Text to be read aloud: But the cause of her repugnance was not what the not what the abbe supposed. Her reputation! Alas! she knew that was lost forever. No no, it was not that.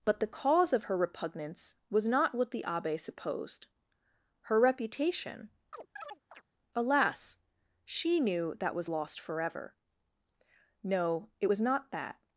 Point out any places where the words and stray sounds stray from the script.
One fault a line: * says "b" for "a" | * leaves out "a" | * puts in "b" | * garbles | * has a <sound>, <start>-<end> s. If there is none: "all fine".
* leaves out "not what the"
* has a chirp, 5.7-6.4 s
* leaves out "no"